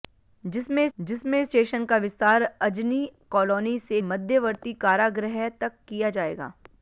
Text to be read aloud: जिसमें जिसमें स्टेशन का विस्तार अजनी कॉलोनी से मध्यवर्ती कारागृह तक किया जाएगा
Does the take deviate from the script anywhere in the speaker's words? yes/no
no